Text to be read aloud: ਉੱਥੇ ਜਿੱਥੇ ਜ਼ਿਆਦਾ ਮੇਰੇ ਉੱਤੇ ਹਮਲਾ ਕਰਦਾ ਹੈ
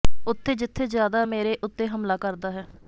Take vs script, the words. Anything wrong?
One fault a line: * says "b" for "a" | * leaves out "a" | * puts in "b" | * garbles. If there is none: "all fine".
all fine